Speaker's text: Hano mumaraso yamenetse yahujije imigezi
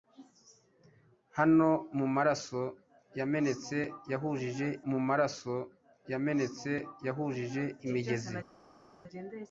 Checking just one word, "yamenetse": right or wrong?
right